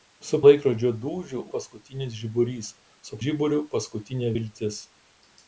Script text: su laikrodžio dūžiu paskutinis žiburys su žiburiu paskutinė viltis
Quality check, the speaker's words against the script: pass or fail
pass